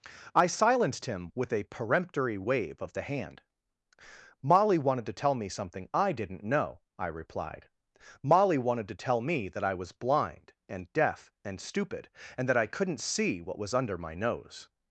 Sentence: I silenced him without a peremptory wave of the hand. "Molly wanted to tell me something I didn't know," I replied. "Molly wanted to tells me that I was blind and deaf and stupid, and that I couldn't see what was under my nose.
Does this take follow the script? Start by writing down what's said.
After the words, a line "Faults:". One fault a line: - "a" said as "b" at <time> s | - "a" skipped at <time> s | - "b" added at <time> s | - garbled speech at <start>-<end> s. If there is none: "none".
I silenced him with a peremptory wave of the hand. "Molly wanted to tell me something I didn't know," I replied. "Molly wanted to tell me that I was blind and deaf and stupid, and that I couldn't see what was under my nose.
Faults:
- "without" said as "with" at 1.4 s
- "tells" said as "tell" at 8.9 s